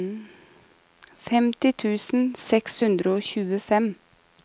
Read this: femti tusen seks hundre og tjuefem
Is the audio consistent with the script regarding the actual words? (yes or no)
yes